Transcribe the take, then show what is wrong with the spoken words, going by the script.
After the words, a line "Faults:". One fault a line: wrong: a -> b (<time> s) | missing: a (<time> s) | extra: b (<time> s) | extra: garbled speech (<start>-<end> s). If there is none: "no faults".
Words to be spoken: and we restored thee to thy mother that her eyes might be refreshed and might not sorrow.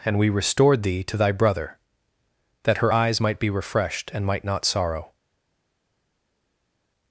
and we restored thee to thy brother that her eyes might be refreshed and might not sorrow.
Faults:
wrong: mother -> brother (1.3 s)